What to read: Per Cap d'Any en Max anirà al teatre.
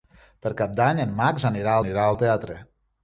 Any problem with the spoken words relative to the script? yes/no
yes